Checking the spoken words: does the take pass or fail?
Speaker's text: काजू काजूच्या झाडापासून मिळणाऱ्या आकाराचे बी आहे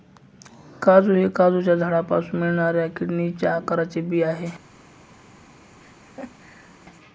fail